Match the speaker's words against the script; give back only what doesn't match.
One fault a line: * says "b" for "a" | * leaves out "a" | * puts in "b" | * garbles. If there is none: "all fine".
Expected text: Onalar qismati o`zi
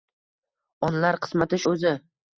all fine